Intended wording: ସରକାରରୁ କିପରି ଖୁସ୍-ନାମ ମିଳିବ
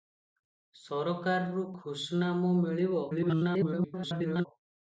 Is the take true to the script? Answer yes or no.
no